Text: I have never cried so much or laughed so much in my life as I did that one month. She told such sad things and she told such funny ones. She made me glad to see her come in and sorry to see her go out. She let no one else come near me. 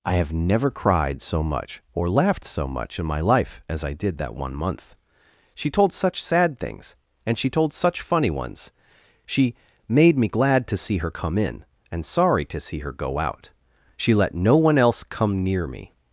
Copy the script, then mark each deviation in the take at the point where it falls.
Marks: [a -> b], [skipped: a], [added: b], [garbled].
I have never cried so much or laughed so much in my life as I did that one month. She told such sad things and she told such funny ones. She made me glad to see her come in and sorry to see her go out. She let no one else come near me.